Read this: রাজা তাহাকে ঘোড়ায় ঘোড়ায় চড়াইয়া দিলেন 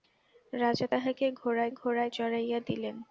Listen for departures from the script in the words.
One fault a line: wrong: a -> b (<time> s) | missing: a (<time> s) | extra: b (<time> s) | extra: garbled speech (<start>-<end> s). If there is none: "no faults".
no faults